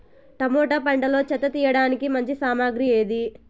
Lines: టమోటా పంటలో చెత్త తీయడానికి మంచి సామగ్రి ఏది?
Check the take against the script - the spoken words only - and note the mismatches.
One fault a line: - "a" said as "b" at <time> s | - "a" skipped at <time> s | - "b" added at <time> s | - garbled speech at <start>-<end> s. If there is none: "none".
none